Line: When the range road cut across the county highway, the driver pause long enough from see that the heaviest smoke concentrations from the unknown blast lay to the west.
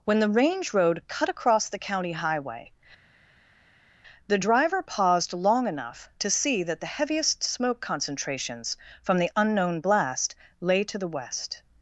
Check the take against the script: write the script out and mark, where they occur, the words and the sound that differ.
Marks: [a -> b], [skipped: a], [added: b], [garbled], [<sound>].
When the range road cut across the county highway, the driver [pause -> paused] long enough [from -> to] see that the heaviest smoke concentrations from the unknown blast lay to the west.